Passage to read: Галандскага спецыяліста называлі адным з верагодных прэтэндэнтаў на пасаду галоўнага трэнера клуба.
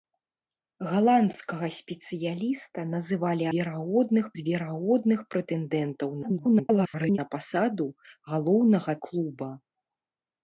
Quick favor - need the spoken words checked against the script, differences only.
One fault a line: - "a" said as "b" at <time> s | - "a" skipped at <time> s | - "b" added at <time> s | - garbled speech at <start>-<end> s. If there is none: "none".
- "адным" said as "верагодных" at 3.6 s
- garbled speech at 6.2-7.2 s
- "трэнера" skipped at 8.9 s